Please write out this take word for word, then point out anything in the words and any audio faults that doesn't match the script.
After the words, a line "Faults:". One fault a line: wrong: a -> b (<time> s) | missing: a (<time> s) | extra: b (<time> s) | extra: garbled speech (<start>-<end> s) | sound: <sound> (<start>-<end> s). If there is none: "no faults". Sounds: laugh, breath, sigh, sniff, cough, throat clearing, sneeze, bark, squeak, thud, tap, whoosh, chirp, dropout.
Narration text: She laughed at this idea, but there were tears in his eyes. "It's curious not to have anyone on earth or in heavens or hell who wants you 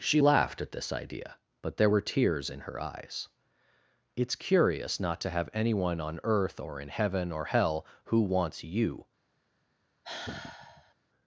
She laughed at this idea, but there were tears in her eyes. "It's curious not to have anyone on earth or in heaven or hell who wants you
Faults:
wrong: his -> her (2.7 s)
wrong: heavens -> heaven (6.9 s)
sound: sigh (10.0-10.9 s)